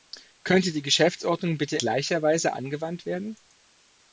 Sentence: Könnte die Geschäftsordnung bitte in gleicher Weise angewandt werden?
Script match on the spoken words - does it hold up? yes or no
no